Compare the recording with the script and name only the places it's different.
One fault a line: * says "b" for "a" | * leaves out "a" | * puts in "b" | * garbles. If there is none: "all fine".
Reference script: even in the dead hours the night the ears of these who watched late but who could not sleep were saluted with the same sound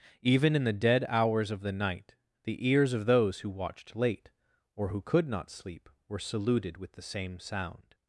* puts in "of"
* says "those" for "these"
* says "or" for "but"